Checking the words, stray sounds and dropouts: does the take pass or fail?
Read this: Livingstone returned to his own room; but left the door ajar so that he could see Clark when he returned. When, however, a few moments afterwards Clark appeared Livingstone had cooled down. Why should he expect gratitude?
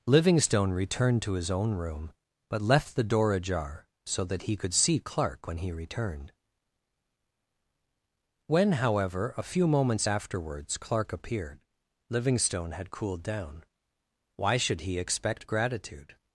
pass